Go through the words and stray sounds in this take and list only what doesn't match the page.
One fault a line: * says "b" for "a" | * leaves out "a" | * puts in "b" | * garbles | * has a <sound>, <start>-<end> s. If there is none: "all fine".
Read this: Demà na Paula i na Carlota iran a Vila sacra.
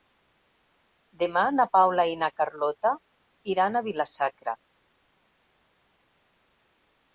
all fine